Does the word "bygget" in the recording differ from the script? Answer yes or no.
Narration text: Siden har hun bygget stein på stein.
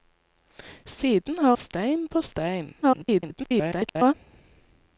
yes